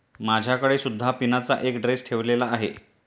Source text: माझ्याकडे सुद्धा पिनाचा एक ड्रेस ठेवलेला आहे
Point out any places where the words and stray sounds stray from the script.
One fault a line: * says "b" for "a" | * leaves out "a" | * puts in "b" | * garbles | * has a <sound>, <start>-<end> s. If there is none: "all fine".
all fine